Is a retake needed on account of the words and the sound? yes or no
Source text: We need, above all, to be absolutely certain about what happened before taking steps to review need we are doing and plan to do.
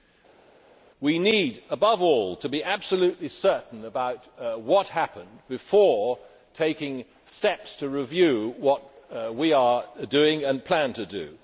yes